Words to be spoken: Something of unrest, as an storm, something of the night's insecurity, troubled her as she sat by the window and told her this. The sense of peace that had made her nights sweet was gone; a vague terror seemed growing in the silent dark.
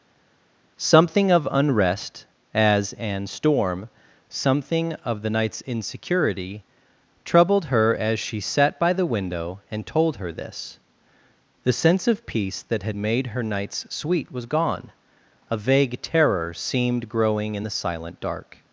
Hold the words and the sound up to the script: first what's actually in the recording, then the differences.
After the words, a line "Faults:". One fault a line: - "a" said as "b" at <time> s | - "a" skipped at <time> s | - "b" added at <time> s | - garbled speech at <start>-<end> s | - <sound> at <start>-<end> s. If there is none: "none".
Something of unrest, as an storm, something of the night's insecurity, troubled her as she sat by the window and told her this. The sense of peace that had made her nights sweet was gone; a vague terror seemed growing in the silent dark.
Faults:
none